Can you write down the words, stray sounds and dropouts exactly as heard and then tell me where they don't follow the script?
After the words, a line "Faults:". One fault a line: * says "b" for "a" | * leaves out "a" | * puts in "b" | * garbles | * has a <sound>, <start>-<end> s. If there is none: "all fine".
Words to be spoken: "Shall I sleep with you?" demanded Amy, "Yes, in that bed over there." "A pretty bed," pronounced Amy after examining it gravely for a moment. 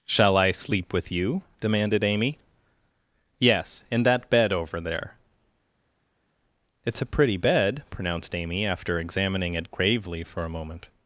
"Shall I sleep with you?" demanded Amy, "Yes, in that bed over there." "It's a pretty bed," pronounced Amy after examining it gravely for a moment.
Faults:
* puts in "It's"